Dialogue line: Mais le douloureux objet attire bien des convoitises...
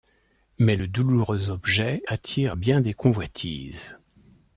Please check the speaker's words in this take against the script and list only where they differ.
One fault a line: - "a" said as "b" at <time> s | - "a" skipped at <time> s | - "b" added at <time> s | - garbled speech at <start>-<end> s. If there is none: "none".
none